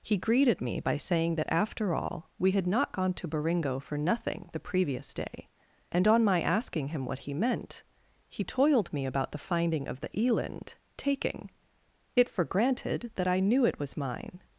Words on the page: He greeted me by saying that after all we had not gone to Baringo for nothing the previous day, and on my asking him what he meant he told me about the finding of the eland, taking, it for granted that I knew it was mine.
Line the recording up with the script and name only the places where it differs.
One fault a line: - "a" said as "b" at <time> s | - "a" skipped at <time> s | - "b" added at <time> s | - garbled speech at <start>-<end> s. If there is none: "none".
- "told" said as "toiled" at 8.4 s